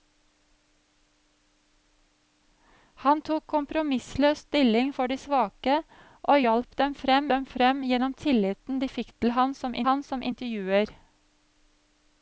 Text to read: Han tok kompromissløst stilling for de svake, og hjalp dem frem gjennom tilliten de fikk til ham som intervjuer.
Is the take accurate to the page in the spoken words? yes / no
no